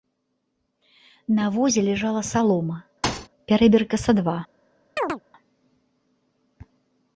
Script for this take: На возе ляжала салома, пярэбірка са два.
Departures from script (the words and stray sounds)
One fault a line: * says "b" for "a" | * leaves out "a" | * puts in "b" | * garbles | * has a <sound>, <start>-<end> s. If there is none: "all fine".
* has a thud, 3.0-3.3 s
* has a chirp, 5.0-5.2 s